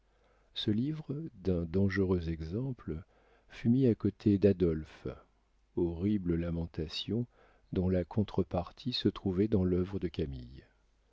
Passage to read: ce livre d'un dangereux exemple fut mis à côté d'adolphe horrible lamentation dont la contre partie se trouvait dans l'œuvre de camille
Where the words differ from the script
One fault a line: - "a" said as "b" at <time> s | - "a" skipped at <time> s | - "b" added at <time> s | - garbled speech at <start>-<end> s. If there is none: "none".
none